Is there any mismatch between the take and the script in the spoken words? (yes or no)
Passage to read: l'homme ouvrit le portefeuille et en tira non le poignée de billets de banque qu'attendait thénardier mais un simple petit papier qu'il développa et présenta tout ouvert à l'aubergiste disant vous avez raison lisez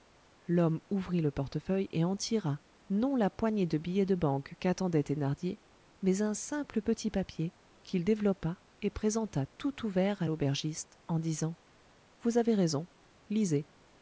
yes